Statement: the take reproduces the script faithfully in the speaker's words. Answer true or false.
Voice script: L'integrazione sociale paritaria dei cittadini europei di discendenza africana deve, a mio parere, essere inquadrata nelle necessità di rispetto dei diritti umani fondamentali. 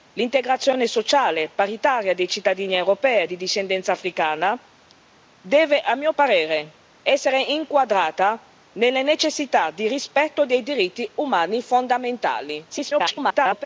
false